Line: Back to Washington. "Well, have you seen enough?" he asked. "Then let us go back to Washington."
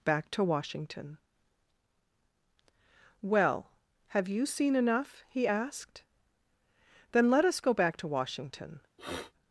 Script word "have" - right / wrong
right